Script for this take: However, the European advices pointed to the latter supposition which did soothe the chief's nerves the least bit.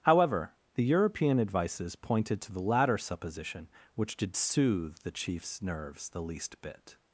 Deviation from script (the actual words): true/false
false